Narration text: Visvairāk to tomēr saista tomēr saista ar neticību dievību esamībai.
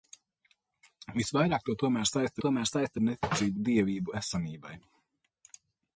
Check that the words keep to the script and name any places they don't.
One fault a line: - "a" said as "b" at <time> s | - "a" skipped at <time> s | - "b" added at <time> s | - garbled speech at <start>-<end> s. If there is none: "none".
none